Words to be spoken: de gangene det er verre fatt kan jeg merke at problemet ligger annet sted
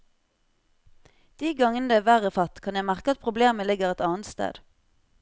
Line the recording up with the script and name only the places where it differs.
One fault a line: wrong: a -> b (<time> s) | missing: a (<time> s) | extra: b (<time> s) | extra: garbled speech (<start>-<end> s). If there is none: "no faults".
extra: et (3.9 s)